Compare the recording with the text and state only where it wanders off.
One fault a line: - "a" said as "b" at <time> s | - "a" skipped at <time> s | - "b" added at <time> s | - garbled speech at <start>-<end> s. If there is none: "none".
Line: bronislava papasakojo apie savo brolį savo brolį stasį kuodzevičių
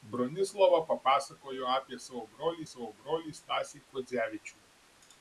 none